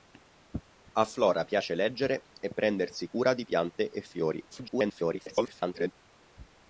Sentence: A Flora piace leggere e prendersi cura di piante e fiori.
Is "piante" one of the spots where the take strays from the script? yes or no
no